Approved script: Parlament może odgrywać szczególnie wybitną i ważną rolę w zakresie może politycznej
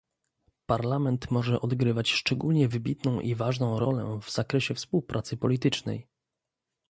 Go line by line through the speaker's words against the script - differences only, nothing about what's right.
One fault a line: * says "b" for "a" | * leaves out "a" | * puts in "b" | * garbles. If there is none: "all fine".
* says "współpracy" for "może"